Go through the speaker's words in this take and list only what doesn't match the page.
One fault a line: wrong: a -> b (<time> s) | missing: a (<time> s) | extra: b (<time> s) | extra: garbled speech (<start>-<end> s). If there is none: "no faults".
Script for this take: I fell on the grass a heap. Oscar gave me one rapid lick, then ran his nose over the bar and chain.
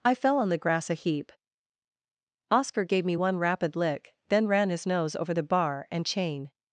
no faults